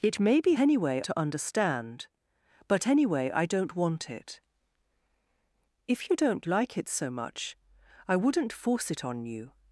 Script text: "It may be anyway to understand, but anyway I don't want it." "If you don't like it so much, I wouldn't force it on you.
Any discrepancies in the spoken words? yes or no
no